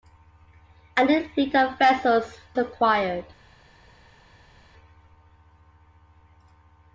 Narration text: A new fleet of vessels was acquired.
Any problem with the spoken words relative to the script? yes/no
yes